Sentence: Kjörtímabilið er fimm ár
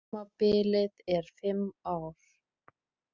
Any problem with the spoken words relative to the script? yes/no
no